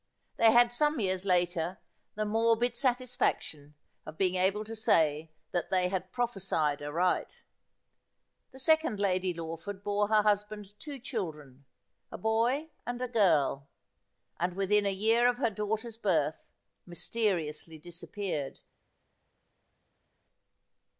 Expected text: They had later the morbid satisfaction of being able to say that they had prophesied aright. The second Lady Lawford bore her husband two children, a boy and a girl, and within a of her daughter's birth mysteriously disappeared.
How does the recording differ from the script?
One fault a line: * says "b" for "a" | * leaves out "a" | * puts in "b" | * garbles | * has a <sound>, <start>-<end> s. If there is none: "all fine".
* puts in "some years"
* puts in "year"